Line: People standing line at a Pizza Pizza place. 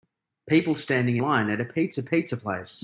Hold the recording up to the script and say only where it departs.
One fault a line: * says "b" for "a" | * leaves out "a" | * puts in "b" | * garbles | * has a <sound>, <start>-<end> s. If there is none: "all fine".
all fine